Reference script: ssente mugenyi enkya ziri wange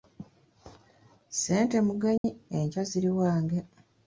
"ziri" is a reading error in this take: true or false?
false